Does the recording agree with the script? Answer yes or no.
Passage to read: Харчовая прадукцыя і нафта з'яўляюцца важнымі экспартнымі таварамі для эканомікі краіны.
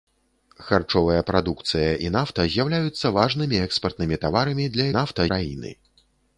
no